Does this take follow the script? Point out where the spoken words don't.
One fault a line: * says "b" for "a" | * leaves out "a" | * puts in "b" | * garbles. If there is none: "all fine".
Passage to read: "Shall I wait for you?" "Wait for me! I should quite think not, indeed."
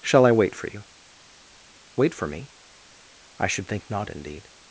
* leaves out "quite"